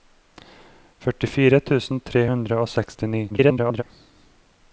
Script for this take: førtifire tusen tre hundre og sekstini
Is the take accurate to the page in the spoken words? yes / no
no